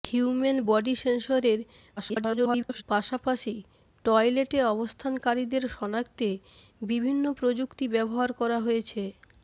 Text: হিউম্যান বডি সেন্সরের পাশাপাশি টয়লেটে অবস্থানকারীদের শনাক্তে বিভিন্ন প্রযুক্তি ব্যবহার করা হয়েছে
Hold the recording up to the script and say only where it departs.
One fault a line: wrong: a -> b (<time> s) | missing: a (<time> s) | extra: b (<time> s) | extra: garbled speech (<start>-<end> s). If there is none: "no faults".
extra: garbled speech (2.0-2.8 s)